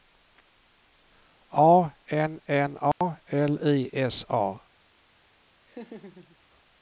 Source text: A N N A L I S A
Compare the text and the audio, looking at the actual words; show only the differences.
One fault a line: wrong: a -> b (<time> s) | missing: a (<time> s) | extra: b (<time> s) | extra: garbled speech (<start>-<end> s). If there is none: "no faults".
no faults